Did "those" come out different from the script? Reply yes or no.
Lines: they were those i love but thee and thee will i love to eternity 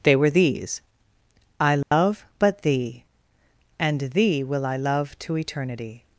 yes